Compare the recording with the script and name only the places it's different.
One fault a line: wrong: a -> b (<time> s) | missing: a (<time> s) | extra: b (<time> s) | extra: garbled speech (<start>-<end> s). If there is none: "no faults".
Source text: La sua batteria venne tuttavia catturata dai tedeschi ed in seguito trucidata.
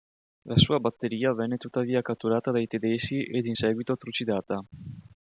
no faults